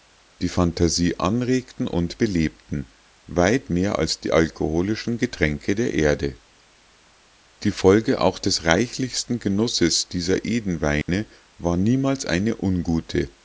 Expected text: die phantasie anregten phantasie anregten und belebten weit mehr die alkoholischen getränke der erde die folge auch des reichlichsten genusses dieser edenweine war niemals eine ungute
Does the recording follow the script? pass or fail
fail